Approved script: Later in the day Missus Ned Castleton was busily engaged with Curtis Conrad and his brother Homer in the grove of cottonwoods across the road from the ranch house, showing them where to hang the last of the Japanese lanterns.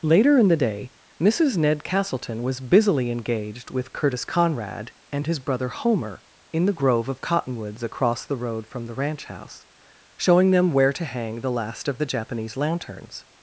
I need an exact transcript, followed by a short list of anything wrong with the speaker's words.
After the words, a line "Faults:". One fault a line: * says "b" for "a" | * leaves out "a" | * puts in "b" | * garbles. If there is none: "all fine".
Later in the day Missus Ned Castleton was busily engaged with Curtis Conrad and his brother Homer in the grove of cottonwoods across the road from the ranch house, showing them where to hang the last of the Japanese lanterns.
Faults:
all fine